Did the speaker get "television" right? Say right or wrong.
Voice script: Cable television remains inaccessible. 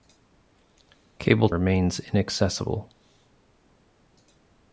wrong